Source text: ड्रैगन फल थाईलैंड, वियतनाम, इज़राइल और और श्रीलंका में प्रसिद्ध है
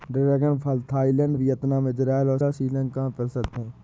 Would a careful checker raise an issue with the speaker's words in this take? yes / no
no